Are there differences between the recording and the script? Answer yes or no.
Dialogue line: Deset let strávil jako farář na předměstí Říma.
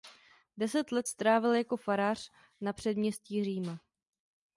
no